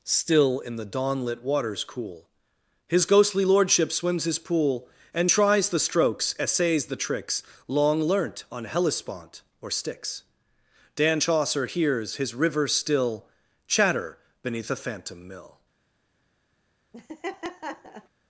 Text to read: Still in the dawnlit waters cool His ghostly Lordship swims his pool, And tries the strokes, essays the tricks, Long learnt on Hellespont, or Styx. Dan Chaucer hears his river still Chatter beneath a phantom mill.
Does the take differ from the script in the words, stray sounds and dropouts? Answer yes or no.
yes